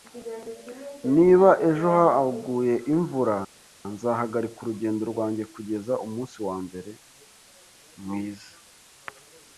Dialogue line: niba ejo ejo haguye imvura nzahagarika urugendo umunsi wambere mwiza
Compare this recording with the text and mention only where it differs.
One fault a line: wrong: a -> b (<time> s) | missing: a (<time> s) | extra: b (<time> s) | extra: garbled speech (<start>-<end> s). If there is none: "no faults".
missing: ejo (1.9 s)
extra: rwanjye kugeza (5.1 s)